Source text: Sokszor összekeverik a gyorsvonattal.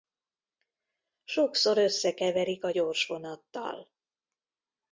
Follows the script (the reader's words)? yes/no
yes